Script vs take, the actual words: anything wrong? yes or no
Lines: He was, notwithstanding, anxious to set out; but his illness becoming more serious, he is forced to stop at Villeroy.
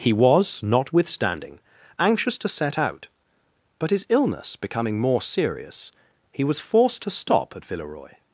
yes